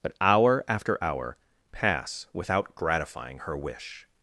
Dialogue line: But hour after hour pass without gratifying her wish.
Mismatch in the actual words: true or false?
false